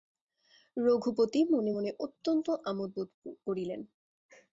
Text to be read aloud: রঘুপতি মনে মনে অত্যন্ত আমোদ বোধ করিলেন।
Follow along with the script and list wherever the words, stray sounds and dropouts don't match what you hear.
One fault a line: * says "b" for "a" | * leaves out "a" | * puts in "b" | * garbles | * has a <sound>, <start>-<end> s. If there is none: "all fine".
all fine